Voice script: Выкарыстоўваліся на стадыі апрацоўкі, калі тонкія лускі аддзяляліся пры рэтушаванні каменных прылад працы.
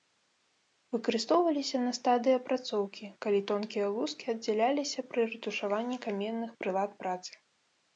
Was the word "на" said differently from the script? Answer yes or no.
no